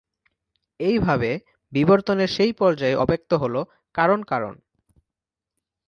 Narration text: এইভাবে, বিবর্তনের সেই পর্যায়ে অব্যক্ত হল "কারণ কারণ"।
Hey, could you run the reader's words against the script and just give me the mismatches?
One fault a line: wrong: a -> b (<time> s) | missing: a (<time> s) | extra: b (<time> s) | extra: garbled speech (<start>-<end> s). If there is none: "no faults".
no faults